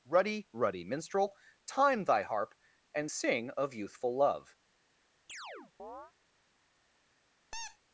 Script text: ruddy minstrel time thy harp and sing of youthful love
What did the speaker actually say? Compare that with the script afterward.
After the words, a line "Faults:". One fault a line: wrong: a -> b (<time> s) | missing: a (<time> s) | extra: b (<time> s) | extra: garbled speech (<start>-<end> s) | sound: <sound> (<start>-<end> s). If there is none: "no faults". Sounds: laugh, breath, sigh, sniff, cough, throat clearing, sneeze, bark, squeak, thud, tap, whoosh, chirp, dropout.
ruddy ruddy minstrel time thy harp and sing of youthful love
Faults:
extra: ruddy (0.5 s)
sound: chirp (5.3-6.1 s)
sound: squeak (7.5-7.8 s)